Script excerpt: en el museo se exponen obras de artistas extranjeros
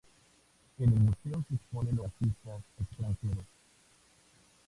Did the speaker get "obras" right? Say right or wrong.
wrong